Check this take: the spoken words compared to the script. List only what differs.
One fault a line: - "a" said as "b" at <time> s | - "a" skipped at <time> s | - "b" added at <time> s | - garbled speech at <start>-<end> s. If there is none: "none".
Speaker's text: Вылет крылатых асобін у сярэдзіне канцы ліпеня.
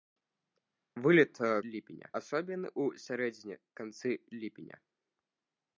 - "крылатых" said as "ліпеня" at 1.7 s